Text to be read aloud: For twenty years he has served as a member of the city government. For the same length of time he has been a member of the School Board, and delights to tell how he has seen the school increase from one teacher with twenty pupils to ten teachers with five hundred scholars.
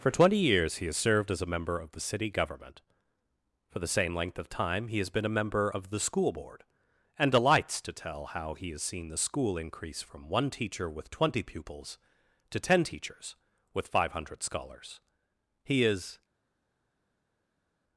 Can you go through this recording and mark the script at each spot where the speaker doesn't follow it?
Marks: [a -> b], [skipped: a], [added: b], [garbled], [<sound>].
For twenty years he has served as a member of the city government. For the same length of time he has been a member of the School Board, and delights to tell how he has seen the school increase from one teacher with twenty pupils to ten teachers with five hundred scholars. [added: He is]